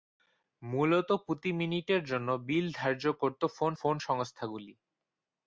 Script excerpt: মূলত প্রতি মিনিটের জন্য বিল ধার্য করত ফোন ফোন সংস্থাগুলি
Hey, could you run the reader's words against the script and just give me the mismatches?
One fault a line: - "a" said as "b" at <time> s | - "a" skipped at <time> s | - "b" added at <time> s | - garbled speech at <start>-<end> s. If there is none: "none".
none